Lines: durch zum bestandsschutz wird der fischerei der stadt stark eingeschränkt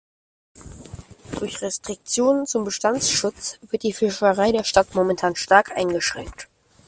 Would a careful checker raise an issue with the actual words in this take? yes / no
yes